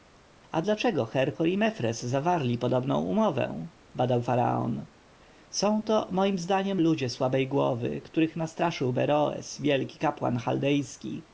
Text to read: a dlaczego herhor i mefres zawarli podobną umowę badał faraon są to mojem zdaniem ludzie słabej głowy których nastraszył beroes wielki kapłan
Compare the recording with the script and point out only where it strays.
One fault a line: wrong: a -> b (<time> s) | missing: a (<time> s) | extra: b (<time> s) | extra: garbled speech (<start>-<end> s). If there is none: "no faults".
no faults